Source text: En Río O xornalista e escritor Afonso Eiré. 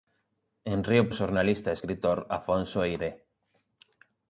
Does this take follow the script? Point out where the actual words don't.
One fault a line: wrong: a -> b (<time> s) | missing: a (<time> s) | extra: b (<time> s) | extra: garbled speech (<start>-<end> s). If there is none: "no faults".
no faults